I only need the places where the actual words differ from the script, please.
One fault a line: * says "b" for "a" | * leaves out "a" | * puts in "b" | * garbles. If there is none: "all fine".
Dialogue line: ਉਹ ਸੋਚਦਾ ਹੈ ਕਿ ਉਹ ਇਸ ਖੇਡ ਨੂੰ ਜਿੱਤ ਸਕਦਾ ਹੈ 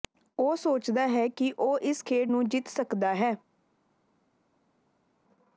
all fine